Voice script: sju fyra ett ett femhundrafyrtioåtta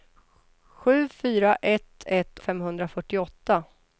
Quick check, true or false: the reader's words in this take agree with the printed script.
true